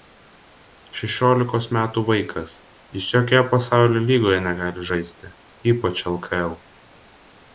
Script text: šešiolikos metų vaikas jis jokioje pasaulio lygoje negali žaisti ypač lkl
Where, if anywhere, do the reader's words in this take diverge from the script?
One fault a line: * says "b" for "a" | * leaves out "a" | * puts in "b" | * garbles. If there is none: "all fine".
all fine